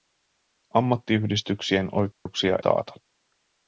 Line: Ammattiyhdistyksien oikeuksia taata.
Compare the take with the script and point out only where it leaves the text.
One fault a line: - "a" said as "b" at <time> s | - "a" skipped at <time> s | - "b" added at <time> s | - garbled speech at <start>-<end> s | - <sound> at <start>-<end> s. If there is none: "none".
- dropout at 2.1-2.3 s